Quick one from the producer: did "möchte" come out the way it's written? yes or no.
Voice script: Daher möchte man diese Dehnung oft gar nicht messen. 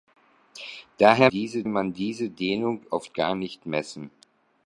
no